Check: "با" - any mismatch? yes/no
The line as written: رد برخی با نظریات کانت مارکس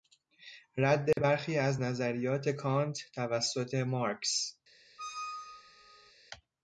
yes